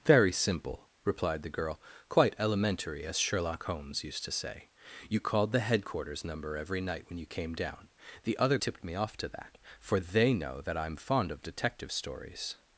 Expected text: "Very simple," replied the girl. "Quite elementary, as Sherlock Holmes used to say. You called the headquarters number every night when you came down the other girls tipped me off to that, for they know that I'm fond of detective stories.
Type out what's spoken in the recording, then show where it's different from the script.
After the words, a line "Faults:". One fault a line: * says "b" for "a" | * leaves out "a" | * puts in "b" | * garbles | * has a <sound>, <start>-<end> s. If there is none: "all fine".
"Very simple," replied the girl. "Quite elementary, as Sherlock Holmes used to say. You called the headquarters number every night when you came down the other tipped me off to that, for they know that I'm fond of detective stories.
Faults:
* leaves out "girls"